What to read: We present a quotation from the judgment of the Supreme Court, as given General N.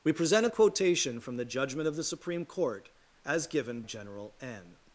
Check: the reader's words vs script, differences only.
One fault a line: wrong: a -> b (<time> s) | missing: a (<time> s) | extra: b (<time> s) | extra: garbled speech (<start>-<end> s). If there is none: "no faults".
no faults